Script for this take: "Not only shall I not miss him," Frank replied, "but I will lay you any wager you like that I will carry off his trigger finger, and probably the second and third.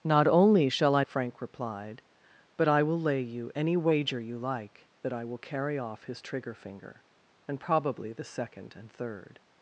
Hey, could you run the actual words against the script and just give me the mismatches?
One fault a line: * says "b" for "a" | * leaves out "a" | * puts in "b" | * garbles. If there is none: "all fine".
* leaves out "not miss him"